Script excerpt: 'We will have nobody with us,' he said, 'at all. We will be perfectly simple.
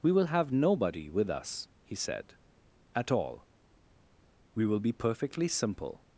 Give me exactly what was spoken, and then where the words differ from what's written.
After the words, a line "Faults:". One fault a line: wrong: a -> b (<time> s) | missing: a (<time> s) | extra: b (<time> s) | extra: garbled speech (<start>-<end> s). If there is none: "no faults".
'We will have nobody with us,' he said, 'at all. We will be perfectly simple.
Faults:
no faults